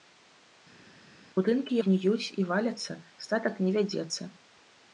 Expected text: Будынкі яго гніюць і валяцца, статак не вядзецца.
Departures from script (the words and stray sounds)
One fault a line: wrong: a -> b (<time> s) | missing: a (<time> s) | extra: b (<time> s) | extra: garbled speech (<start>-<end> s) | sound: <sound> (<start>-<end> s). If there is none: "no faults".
missing: яго (1.7 s)